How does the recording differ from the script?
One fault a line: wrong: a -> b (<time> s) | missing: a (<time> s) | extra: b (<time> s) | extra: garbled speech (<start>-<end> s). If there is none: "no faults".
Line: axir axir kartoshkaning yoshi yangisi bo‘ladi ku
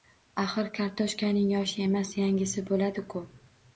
missing: axir (0.7 s)
extra: emas (1.9 s)